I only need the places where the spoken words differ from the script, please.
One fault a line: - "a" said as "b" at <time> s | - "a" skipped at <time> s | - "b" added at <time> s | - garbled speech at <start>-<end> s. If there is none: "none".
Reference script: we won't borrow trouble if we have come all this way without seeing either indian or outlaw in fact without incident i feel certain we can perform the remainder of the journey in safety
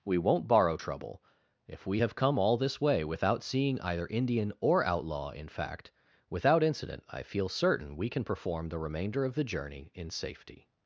none